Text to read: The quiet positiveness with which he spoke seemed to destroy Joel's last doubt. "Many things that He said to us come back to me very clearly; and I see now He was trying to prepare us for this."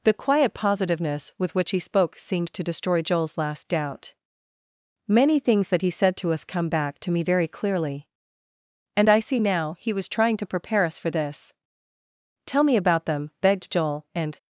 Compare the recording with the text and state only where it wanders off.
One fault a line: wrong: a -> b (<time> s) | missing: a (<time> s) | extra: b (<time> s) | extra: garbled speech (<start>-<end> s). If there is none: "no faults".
extra: Tell me about them begged Joel and (12.5 s)